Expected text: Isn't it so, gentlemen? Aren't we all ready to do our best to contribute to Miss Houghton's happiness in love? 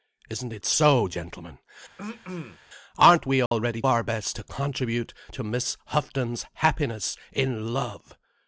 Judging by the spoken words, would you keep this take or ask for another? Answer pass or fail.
fail